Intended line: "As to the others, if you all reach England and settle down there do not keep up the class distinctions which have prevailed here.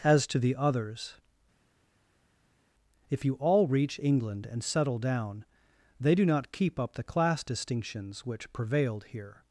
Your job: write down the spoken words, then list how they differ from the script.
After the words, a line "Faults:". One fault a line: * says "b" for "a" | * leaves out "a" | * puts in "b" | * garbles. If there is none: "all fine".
"As to the others, if you all reach England and settle down they do not keep up the class distinctions which prevailed here.
Faults:
* says "they" for "there"
* leaves out "have"